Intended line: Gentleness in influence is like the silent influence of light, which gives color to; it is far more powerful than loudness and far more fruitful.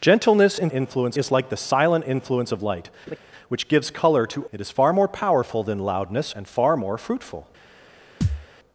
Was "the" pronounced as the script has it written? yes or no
yes